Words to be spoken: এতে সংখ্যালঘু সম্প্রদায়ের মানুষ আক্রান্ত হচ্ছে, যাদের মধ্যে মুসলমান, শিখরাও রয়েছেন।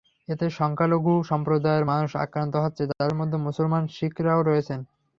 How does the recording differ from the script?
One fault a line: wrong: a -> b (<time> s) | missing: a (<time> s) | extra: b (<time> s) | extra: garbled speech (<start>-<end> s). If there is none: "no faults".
no faults